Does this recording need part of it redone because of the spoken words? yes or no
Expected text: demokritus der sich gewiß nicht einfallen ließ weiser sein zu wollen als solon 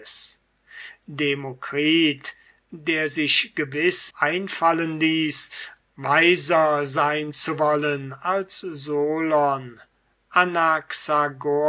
yes